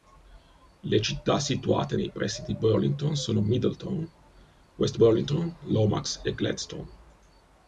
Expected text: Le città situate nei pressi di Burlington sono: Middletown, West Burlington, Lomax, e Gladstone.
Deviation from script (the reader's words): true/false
false